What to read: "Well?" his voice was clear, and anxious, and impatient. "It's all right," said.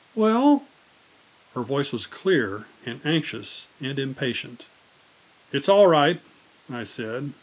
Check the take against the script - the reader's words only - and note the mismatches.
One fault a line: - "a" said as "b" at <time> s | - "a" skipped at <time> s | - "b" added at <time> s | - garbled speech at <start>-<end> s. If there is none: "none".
- "his" said as "her" at 1.5 s
- "I" added at 6.7 s